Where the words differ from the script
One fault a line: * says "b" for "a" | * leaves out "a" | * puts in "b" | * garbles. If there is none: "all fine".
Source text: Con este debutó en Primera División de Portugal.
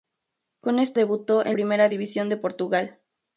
all fine